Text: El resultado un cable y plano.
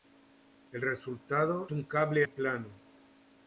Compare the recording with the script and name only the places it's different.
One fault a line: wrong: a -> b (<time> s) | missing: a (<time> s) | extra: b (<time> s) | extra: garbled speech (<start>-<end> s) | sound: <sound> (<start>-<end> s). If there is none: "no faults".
no faults